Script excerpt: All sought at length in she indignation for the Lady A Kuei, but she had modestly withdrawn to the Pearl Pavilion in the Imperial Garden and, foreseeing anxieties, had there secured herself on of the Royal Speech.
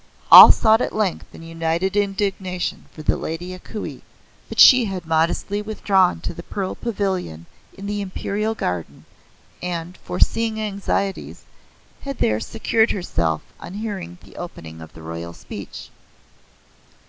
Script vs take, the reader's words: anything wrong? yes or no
yes